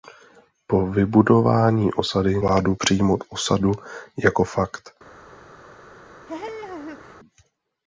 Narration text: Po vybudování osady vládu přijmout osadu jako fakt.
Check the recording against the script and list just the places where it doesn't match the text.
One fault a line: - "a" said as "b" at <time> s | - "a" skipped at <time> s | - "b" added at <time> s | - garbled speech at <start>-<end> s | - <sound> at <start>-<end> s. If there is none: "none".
- laugh at 6.3-7.2 s